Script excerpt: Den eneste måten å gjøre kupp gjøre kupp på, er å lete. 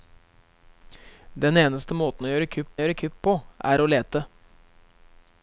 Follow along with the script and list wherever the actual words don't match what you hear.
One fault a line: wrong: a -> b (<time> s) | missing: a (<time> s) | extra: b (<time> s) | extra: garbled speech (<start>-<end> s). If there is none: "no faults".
no faults